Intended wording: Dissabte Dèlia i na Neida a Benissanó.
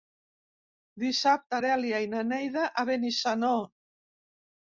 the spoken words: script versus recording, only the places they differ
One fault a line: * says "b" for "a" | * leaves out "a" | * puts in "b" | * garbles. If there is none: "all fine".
all fine